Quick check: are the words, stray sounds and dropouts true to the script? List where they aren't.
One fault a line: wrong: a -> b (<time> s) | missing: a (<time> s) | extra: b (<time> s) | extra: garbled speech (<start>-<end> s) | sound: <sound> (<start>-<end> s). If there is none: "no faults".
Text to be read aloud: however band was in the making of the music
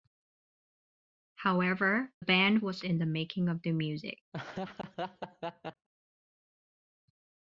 sound: laugh (4.3-5.9 s)